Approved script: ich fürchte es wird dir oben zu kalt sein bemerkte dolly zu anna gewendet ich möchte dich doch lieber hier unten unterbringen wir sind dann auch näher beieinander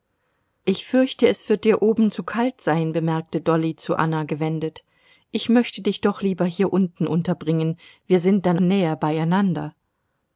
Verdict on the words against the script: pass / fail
fail